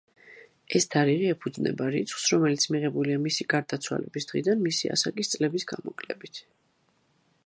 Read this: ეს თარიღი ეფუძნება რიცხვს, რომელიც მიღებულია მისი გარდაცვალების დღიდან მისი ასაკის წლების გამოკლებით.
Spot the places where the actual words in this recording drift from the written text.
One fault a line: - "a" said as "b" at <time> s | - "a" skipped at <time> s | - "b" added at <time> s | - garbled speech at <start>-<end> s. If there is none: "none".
none